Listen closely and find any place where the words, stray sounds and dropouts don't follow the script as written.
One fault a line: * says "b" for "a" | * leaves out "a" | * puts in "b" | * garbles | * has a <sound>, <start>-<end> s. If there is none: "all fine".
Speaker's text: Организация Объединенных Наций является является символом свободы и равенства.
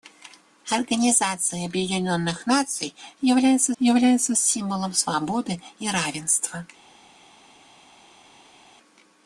all fine